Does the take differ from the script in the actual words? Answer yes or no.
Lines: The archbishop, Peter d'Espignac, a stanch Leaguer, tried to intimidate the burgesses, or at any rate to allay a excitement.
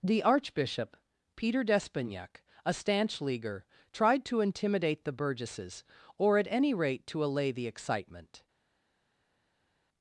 yes